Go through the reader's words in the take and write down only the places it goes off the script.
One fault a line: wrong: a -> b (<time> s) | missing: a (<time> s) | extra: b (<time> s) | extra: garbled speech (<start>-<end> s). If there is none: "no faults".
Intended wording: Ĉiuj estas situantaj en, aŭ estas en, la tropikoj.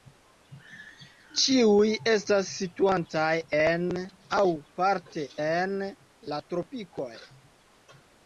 wrong: estas -> parte (4.8 s)